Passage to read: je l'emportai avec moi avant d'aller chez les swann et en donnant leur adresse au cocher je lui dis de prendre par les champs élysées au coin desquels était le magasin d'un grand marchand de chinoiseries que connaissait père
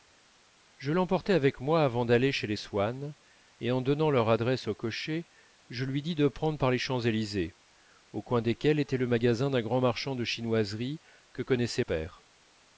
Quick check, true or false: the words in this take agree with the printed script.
true